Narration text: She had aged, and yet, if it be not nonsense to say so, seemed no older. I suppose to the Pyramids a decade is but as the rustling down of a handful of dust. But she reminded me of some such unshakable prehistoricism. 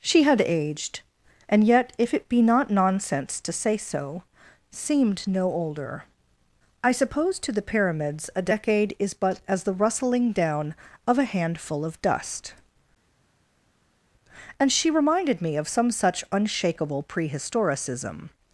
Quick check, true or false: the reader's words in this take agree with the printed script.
false